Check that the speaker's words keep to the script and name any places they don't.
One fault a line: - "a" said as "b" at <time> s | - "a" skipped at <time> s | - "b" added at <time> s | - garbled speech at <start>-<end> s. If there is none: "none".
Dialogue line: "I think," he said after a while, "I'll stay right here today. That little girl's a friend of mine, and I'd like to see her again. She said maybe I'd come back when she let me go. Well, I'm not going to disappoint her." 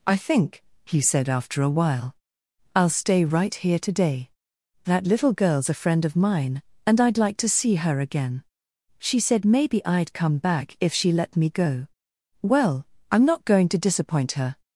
- "when" said as "if" at 10.8 s